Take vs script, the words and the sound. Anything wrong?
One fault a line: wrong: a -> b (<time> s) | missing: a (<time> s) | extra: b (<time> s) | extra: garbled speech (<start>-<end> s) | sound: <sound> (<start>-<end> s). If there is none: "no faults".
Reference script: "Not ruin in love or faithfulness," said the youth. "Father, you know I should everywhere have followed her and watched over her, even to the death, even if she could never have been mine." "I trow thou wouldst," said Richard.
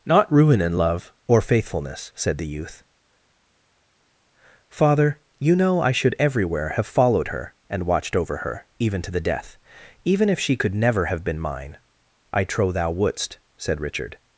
no faults